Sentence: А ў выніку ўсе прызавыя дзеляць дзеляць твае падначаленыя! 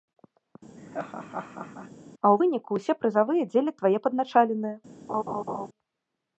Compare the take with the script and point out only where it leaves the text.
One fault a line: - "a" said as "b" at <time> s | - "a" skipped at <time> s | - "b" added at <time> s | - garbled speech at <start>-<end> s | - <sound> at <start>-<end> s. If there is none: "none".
- laugh at 0.8-1.9 s
- "дзеляць" skipped at 3.8 s
- laugh at 5.1-5.7 s